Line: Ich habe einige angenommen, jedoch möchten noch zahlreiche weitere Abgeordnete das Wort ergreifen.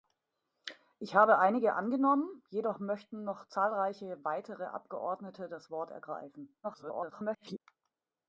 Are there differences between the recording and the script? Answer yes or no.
yes